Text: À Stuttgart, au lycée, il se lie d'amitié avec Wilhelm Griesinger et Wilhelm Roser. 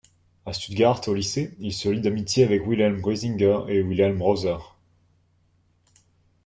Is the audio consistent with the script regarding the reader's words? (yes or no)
yes